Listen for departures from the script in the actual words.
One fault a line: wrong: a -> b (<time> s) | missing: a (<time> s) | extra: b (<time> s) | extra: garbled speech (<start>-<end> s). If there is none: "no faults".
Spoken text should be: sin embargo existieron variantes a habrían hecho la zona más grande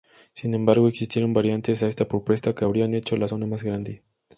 extra: esta propuesta que (1.9 s)